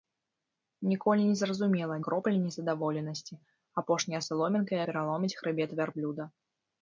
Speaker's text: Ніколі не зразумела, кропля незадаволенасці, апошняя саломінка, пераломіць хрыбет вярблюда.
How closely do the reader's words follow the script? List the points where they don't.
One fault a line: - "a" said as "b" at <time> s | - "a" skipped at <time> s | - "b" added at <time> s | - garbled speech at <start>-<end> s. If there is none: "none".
none